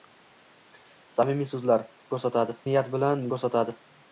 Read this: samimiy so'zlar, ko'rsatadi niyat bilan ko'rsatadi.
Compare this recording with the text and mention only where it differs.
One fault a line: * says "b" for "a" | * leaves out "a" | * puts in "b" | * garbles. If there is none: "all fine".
all fine